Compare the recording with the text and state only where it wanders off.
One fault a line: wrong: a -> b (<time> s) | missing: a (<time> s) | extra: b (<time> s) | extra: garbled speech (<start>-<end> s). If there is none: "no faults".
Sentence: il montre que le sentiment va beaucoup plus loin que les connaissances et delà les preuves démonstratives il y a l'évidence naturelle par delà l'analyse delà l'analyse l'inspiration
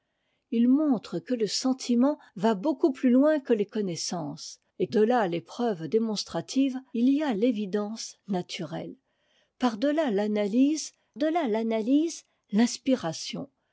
no faults